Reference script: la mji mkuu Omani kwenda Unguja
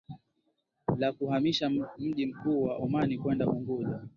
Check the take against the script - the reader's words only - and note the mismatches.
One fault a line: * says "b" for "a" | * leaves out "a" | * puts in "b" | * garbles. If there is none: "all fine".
* puts in "kuhamisha"
* puts in "wa"